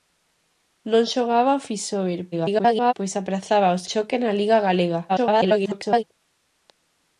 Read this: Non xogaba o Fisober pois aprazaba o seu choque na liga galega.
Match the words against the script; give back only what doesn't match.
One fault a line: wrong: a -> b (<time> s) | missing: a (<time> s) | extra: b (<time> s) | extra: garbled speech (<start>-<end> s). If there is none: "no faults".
extra: garbled speech (2.3-2.9 s)
missing: seu (3.8 s)
extra: garbled speech (5.1-6.0 s)